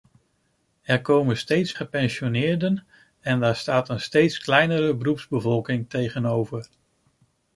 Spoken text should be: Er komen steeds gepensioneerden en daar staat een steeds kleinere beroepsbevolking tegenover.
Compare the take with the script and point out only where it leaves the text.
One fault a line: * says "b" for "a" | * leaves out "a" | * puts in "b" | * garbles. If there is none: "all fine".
all fine